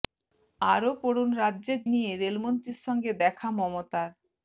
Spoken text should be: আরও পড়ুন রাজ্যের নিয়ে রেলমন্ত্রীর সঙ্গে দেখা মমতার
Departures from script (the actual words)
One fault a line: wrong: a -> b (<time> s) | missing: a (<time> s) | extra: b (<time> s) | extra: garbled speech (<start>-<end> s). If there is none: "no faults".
no faults